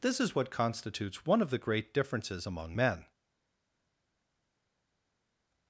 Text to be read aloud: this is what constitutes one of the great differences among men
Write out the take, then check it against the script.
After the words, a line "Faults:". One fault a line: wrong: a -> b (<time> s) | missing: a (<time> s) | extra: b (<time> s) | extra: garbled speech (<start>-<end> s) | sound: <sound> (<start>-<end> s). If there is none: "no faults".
this is what constitutes one of the great differences among men
Faults:
no faults